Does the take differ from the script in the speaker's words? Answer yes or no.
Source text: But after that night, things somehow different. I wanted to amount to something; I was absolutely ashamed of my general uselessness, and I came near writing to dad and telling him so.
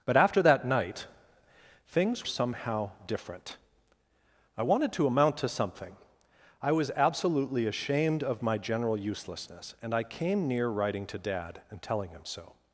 no